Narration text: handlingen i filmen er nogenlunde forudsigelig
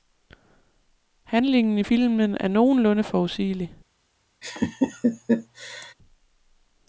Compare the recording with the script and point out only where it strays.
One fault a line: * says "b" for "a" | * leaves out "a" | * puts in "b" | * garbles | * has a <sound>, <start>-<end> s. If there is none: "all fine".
* has a laugh, 4.4-5.9 s